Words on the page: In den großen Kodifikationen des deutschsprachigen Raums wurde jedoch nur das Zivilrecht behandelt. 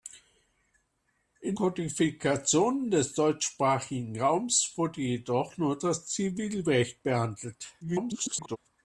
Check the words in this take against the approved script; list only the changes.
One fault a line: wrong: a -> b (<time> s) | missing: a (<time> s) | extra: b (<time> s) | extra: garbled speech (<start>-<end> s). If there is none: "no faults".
missing: den großen (1.6 s)
extra: garbled speech (7.8-8.6 s)